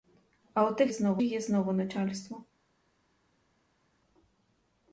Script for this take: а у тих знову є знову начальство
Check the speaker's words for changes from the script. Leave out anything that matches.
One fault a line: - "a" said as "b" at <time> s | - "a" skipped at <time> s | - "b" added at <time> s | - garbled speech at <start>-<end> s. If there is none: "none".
none